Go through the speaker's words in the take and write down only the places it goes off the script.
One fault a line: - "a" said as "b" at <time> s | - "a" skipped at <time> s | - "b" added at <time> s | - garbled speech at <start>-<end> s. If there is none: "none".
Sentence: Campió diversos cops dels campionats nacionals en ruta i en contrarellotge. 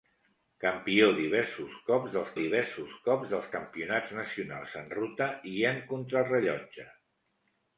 - "diversos cops dels" added at 2.4 s